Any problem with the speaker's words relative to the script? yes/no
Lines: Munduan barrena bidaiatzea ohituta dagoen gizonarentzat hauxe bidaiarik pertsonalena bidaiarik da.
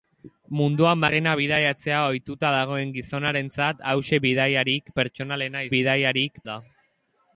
no